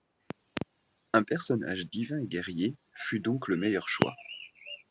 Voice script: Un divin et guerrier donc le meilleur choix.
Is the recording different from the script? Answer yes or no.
yes